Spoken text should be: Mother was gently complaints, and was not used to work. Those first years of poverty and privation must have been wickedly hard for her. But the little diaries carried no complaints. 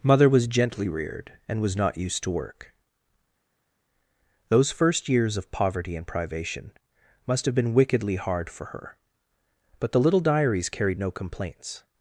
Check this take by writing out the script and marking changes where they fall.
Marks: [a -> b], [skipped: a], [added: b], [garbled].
Mother was gently [complaints, -> reared] and was not used to work. Those first years of poverty and privation must have been wickedly hard for her. But the little diaries carried no complaints.